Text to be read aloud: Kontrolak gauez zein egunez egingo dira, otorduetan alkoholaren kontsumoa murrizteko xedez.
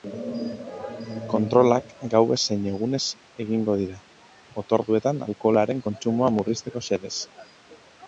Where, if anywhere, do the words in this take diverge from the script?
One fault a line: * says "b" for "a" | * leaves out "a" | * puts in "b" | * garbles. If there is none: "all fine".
all fine